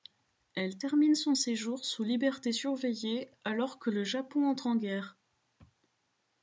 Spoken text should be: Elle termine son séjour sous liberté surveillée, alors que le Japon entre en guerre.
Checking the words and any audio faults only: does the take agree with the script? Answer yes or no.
yes